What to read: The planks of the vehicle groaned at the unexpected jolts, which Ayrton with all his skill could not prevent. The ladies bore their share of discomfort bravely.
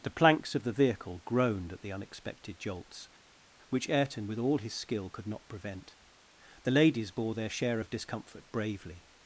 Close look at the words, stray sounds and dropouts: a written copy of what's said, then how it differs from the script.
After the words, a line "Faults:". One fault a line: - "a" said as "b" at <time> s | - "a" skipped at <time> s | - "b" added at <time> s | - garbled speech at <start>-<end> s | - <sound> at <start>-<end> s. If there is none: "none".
The planks of the vehicle groaned at the unexpected jolts, which Ayrton with all his skill could not prevent. The ladies bore their share of discomfort bravely.
Faults:
none